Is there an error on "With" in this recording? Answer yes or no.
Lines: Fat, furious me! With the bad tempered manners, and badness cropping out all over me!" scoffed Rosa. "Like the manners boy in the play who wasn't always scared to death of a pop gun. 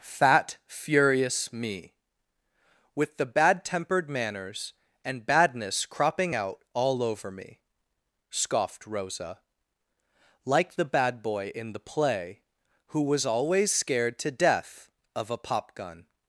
no